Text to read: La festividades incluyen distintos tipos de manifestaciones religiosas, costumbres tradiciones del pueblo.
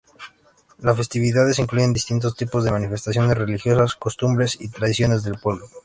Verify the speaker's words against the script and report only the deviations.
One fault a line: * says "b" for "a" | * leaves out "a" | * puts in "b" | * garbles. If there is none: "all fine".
* says "Las" for "La"
* puts in "y"